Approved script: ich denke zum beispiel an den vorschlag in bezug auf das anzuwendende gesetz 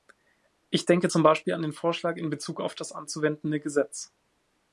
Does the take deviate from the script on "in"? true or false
false